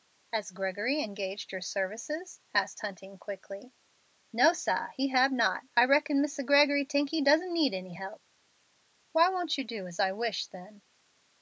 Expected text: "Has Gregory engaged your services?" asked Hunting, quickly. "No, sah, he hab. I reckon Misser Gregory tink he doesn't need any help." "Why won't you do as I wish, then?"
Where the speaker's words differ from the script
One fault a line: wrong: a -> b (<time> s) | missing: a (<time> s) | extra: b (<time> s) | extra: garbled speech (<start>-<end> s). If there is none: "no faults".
extra: not (5.3 s)